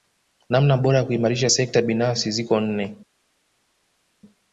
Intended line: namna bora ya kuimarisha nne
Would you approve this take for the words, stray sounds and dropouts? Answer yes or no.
no